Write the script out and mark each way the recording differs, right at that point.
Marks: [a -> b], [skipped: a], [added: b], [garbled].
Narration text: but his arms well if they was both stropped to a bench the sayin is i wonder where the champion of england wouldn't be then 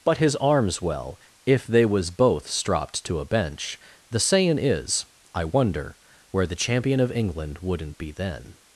but his arms well if they was both stropped to a bench the sayin is i wonder where the champion of england wouldn't be then